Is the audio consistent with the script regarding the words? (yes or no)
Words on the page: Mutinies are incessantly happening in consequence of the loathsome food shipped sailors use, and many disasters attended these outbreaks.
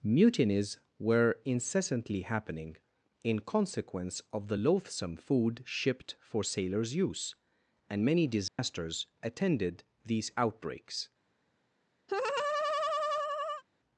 no